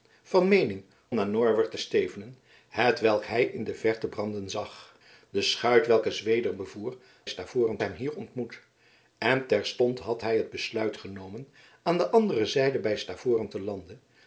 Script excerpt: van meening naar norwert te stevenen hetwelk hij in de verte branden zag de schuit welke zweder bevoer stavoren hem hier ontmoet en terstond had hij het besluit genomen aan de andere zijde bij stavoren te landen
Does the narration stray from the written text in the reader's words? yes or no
no